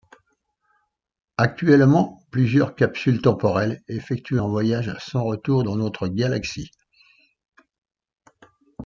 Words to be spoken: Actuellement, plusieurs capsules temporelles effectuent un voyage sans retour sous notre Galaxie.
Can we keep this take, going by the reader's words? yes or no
no